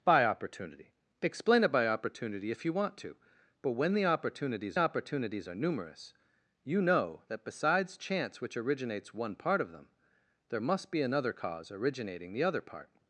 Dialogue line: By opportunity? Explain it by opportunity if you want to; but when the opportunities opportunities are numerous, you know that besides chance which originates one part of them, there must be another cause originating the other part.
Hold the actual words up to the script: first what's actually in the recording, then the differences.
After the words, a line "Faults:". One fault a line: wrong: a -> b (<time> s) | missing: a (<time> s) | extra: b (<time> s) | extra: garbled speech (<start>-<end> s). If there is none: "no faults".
By opportunity? Explain it by opportunity if you want to; but when the opportunities opportunities are numerous, you know that besides chance which originates one part of them, there must be another cause originating the other part.
Faults:
no faults